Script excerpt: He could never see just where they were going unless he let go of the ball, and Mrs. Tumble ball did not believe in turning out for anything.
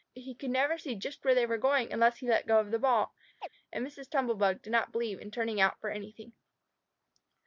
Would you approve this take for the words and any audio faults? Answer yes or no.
no